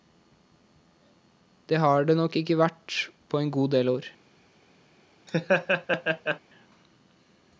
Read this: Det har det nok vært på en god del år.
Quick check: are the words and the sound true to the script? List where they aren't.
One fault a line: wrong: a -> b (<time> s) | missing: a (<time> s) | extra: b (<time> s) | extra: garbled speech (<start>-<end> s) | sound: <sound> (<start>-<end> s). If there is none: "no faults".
extra: ikke (2.4 s)
sound: laugh (5.3-6.4 s)